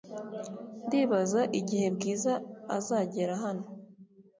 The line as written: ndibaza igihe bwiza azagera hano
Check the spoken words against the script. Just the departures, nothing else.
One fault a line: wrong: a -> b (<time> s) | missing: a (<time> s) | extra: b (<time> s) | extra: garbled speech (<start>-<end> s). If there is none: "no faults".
no faults